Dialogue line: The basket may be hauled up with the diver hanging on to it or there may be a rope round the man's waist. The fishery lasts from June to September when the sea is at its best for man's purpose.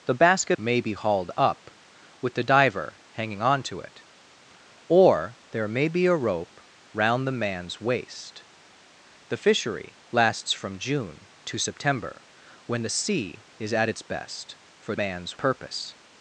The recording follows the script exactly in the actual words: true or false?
true